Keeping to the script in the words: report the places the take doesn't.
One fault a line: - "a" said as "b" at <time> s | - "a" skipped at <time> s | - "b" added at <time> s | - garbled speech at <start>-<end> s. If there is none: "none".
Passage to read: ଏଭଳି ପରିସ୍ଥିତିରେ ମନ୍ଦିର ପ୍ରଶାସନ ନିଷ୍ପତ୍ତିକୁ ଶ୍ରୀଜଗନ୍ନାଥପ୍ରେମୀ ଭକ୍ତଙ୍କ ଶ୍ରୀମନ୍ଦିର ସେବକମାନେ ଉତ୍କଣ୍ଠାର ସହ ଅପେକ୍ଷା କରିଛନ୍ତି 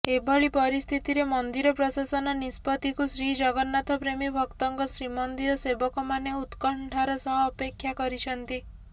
none